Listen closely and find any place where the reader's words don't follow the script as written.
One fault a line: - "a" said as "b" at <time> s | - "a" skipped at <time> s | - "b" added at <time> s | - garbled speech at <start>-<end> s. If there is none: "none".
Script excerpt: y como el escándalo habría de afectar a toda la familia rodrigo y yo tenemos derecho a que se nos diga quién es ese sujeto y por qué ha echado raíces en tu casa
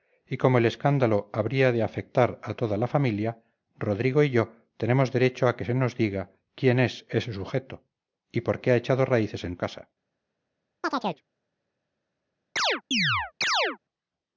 - "tu" skipped at 9.6 s